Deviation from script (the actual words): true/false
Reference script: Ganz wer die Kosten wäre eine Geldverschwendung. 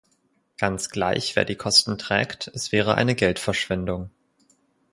true